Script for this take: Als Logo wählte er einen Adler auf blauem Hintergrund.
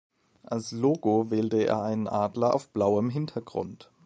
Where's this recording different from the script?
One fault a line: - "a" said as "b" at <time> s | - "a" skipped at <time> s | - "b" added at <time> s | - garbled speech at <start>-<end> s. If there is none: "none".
none